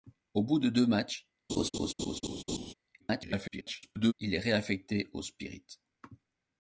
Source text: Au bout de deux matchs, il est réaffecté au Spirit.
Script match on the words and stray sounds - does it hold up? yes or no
no